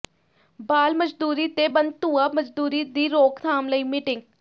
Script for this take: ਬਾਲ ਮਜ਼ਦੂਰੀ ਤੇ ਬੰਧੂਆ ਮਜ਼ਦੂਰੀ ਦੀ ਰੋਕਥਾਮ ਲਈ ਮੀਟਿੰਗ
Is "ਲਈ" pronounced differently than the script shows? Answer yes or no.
no